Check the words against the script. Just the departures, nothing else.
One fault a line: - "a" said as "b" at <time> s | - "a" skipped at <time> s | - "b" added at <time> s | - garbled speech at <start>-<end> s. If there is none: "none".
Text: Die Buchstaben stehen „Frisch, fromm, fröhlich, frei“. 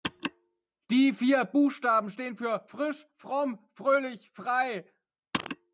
- "vier" added at 1.1 s
- "für" added at 2.4 s